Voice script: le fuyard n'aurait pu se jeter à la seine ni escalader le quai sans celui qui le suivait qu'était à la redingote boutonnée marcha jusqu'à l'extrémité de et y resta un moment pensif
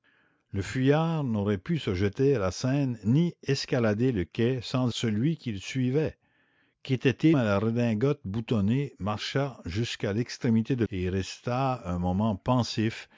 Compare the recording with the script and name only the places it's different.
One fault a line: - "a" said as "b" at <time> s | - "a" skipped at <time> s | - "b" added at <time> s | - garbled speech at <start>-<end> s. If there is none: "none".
none